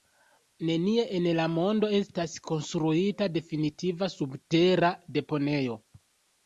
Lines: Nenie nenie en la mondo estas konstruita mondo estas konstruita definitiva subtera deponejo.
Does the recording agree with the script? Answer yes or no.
no